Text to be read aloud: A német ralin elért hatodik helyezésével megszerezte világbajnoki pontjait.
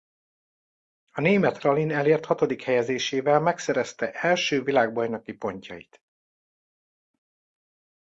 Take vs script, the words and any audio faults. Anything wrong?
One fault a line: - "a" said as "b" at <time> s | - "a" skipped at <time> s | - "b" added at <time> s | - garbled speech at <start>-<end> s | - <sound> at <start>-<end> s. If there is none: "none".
- "első" added at 4.1 s